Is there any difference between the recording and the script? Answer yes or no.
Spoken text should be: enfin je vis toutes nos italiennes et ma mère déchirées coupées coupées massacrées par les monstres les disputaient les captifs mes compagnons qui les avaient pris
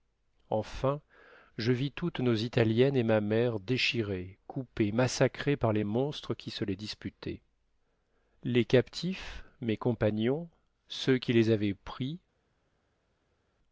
yes